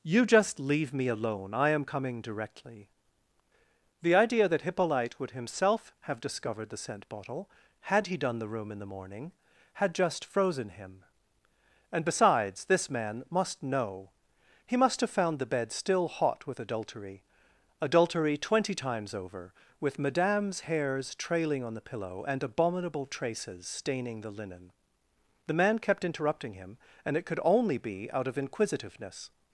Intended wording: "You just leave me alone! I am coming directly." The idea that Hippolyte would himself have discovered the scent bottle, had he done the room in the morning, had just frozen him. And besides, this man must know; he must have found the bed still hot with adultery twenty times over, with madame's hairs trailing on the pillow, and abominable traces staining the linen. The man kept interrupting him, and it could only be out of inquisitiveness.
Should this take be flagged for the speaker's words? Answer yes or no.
yes